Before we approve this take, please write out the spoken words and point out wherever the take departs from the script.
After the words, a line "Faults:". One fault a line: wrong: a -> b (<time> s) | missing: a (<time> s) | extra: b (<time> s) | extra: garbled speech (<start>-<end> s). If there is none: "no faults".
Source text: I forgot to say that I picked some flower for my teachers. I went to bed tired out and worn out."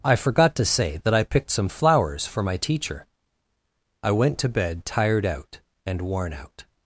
I forgot to say that I picked some flowers for my teacher. I went to bed tired out and worn out."
Faults:
wrong: flower -> flowers (1.7 s)
wrong: teachers -> teacher (2.6 s)